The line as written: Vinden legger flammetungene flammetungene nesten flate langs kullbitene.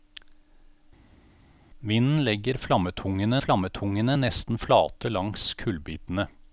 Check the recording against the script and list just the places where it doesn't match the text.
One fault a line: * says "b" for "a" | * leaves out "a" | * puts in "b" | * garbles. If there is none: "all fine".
all fine